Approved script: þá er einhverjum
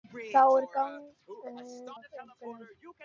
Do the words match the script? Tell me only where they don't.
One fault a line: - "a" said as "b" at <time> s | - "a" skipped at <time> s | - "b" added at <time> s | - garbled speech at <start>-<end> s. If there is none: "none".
none